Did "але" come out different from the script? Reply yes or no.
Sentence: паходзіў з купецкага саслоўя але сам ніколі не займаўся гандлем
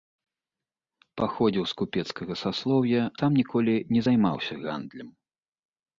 yes